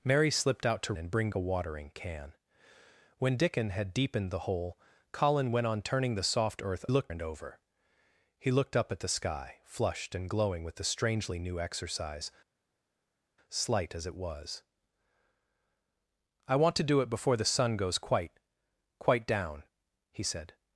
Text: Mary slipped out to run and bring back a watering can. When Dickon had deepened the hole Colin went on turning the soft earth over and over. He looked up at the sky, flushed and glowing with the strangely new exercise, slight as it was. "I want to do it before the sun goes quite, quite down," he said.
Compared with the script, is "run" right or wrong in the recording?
wrong